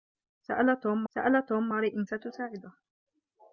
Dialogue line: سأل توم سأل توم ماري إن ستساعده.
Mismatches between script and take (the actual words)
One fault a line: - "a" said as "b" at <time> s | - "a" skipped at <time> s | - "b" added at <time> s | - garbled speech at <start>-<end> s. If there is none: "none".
none